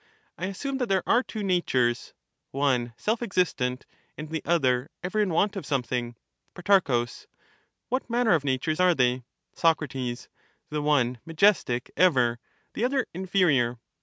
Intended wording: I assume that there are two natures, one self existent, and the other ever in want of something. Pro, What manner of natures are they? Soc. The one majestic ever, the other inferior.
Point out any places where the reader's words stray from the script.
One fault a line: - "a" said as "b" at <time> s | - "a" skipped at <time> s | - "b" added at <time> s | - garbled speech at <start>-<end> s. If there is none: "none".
none